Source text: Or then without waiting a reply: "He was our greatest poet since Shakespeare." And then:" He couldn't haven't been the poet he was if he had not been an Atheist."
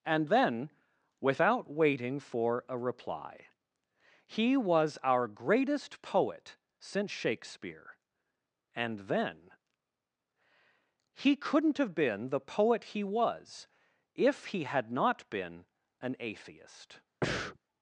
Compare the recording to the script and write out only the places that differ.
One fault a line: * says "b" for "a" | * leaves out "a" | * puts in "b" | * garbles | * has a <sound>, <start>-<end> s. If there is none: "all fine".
* says "And" for "Or"
* puts in "for"
* says "have" for "haven't"
* has a breath, 17.2-17.6 s